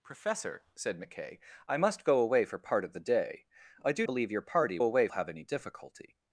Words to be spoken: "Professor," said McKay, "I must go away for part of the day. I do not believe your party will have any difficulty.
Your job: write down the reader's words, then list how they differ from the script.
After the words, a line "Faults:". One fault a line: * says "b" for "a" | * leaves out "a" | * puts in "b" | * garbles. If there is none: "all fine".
"Professor," said McKay, "I must go away for part of the day. I do believe your party away have any difficulty.
Faults:
* leaves out "not"
* says "away" for "will"